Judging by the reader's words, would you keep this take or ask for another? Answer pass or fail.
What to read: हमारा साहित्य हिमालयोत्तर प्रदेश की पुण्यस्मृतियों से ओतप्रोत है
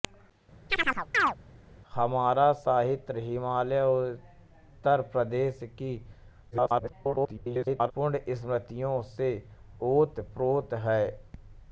fail